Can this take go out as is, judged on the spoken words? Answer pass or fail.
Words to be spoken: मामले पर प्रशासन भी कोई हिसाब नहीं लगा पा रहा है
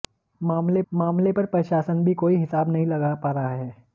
fail